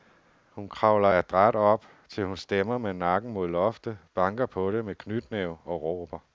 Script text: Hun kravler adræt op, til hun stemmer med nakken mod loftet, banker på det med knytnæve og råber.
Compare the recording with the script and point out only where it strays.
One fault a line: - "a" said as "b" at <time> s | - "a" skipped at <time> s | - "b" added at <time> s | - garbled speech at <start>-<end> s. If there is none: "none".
none